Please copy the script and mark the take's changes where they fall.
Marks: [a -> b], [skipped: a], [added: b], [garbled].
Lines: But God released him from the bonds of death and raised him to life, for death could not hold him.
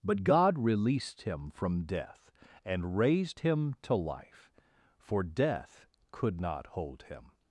But God released him from [skipped: the bonds of] death and raised him to life, for death could not hold him.